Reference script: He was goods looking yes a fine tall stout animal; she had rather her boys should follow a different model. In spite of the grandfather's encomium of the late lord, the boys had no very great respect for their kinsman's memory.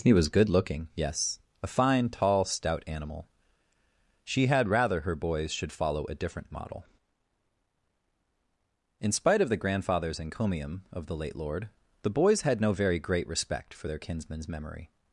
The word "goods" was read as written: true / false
false